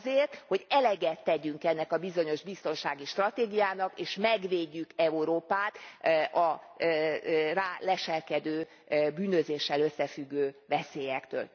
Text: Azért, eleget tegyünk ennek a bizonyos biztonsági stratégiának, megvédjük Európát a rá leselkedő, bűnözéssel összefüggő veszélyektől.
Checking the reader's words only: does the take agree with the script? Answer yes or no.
no